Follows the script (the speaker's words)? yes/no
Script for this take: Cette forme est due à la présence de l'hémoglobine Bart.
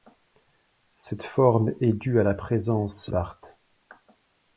no